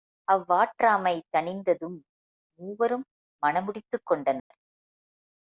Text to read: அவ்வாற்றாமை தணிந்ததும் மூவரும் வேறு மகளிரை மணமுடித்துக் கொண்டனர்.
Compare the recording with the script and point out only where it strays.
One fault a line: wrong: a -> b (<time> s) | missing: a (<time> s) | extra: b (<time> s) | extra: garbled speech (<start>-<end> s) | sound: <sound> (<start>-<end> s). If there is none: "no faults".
missing: வேறு மகளிரை (3.0 s)
sound: dropout (4.4-4.5 s)